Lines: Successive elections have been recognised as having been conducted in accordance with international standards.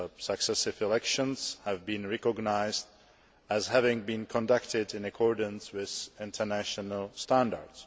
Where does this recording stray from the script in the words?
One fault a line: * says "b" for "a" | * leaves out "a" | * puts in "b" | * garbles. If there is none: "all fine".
all fine